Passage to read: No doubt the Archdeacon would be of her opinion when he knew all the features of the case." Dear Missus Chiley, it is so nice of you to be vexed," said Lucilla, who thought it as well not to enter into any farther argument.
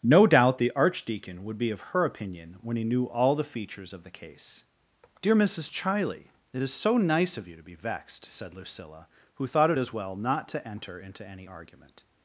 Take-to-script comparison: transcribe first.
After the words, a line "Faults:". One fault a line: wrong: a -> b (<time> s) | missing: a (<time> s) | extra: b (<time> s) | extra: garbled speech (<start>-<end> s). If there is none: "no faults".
No doubt the Archdeacon would be of her opinion when he knew all the features of the case." Dear Missus Chiley, it is so nice of you to be vexed," said Lucilla, who thought it as well not to enter into any argument.
Faults:
missing: farther (11.5 s)